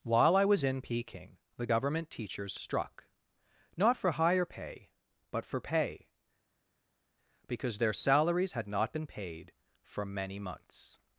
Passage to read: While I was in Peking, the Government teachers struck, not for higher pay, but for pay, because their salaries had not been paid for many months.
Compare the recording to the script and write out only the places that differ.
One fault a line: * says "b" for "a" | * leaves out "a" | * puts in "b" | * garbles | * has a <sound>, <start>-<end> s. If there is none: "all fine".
all fine